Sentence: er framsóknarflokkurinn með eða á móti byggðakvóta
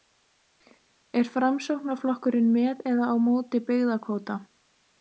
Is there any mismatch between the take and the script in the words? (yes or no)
no